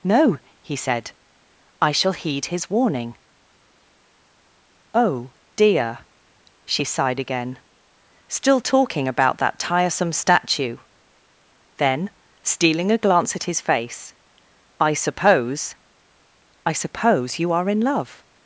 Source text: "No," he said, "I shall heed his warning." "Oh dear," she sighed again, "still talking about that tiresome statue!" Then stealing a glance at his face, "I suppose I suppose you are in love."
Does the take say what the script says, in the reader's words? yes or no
yes